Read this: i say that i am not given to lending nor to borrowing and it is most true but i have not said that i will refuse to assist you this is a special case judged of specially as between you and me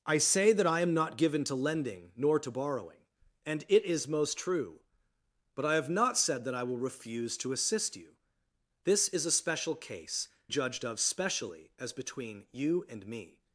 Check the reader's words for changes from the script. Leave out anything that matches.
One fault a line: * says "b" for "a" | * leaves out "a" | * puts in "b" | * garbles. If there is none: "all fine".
all fine